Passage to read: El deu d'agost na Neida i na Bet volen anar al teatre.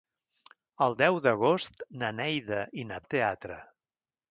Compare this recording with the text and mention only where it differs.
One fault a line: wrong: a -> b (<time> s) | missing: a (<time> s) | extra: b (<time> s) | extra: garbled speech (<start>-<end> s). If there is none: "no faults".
missing: Bet volen anar (3.0 s)